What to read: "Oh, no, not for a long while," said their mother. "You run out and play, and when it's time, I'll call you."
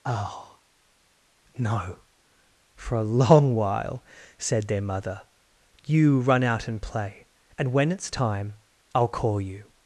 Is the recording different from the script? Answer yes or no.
yes